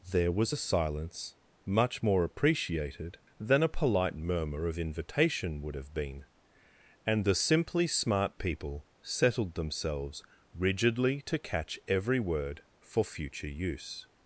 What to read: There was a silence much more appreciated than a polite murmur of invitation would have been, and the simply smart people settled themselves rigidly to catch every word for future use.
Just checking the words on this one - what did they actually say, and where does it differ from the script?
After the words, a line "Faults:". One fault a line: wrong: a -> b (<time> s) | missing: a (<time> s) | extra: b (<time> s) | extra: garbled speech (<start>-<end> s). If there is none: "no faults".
There was a silence much more appreciated than a polite murmur of invitation would have been, and the simply smart people settled themselves rigidly to catch every word for future use.
Faults:
no faults